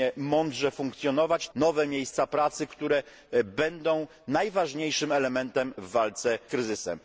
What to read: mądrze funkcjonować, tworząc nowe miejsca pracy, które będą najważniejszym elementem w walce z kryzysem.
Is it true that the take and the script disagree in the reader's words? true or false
true